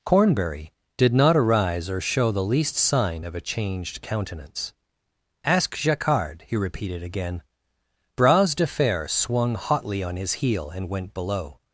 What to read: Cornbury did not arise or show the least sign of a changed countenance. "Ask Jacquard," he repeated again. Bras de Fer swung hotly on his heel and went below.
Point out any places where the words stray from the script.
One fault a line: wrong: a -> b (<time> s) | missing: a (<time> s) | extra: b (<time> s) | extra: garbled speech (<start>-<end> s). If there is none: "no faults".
no faults